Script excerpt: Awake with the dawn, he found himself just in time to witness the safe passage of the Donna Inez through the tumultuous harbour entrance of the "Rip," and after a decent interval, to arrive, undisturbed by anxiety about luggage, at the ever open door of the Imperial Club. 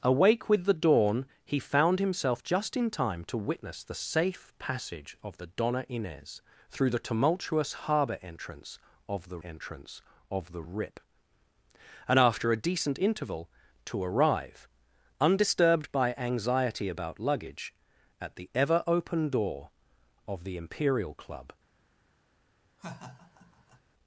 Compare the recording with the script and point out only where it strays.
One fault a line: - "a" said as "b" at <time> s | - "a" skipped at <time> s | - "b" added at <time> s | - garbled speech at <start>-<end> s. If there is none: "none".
- "entrance of the" added at 9.4 s